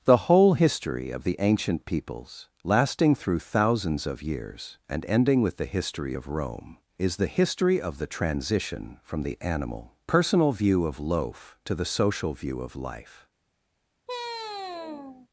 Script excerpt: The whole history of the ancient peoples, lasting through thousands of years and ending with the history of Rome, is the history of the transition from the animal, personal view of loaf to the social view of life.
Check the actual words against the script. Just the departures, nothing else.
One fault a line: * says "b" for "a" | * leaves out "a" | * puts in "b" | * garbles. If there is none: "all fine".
all fine